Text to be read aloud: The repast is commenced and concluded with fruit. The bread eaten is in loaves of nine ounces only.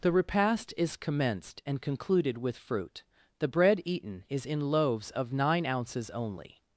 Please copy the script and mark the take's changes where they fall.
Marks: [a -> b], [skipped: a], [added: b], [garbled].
The repast is commenced and concluded with fruit. The bread eaten is in loaves of nine ounces only.